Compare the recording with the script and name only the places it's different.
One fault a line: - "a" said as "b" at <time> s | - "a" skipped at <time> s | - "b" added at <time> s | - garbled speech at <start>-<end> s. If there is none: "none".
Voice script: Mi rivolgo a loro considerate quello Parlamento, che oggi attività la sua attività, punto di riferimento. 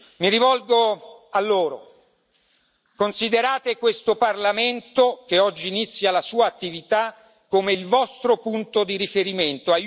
- "quello" said as "questo" at 3.8 s
- "attività" said as "inizia" at 5.7 s
- "come il vostro" added at 7.5 s